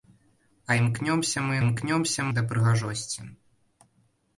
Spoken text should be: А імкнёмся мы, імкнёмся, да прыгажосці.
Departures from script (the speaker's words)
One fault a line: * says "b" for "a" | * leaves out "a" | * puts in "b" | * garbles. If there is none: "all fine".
all fine